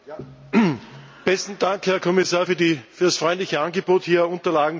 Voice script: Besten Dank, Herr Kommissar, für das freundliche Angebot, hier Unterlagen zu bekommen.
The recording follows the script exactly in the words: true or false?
true